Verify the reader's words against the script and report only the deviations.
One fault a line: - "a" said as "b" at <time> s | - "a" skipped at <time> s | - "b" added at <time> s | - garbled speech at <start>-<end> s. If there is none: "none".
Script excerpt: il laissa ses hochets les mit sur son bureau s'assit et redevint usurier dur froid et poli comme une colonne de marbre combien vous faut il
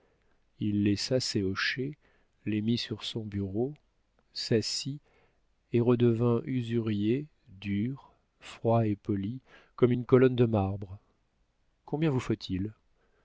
none